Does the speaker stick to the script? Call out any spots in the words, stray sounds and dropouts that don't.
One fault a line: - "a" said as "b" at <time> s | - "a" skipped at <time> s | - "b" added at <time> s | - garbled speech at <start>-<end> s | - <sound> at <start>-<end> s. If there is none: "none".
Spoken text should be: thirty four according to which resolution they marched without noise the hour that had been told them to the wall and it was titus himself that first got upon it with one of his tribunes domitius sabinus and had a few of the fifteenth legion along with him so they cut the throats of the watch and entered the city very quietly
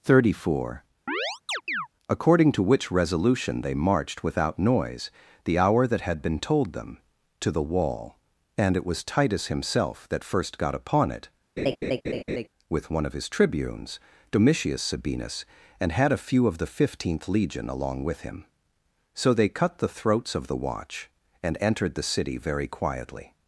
- chirp at 1.1-1.9 s
- laugh at 11.6-12.5 s